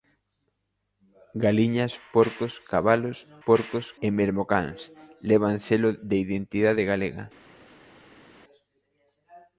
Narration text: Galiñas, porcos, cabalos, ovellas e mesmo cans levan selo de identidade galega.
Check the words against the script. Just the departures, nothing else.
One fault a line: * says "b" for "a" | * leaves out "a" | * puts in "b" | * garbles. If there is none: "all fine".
* says "porcos" for "ovellas"